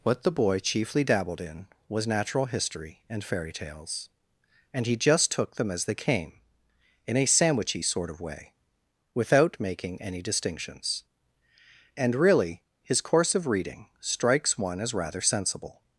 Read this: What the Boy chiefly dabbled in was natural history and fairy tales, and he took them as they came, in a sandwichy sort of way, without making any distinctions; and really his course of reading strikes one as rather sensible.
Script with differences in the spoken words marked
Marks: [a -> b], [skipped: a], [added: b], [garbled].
What the Boy chiefly dabbled in was natural history and fairy tales, and he [added: just] took them as they came, in a sandwichy sort of way, without making any distinctions; and really his course of reading strikes one as rather sensible.